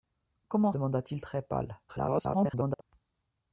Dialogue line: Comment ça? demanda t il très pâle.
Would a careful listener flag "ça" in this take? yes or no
yes